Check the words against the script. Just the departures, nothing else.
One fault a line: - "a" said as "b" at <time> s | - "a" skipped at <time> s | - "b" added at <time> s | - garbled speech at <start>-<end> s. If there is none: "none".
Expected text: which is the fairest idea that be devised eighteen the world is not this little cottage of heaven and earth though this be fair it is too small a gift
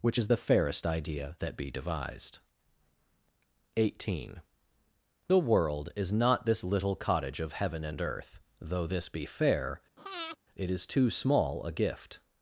none